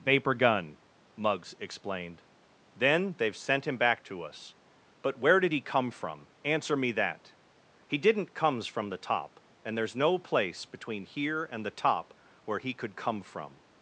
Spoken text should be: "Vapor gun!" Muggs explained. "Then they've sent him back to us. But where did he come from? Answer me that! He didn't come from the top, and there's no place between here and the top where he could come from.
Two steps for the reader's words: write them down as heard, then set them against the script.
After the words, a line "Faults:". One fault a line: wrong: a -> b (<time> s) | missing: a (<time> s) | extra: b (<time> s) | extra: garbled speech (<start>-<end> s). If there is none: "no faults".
"Vapor gun!" Muggs explained. "Then they've sent him back to us. But where did he come from? Answer me that! He didn't comes from the top, and there's no place between here and the top where he could come from.
Faults:
wrong: come -> comes (8.3 s)